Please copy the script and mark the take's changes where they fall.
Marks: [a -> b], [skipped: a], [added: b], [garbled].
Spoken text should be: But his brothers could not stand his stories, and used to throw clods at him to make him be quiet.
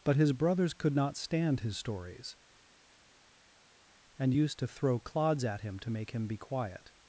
But his brothers could not stand his stories, and used to throw clods at him to make him be quiet.